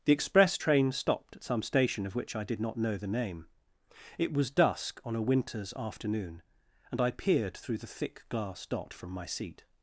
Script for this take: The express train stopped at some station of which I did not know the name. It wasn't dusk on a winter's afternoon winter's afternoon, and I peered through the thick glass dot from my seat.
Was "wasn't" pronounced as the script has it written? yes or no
no